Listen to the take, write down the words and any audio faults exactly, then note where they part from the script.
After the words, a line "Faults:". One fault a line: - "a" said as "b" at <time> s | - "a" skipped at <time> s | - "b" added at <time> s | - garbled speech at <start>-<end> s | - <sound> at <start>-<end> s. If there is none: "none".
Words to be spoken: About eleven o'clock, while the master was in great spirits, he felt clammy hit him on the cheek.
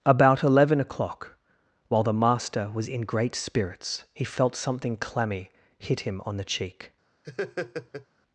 About eleven o'clock, while the master was in great spirits, he felt something clammy hit him on the cheek.
Faults:
- "something" added at 4.5 s
- laugh at 7.2-8.1 s